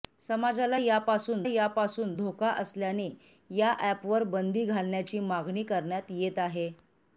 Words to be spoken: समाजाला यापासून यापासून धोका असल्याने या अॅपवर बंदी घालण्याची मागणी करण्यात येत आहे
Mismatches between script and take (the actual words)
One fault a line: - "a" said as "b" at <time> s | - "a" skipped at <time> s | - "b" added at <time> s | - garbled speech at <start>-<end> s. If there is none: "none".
none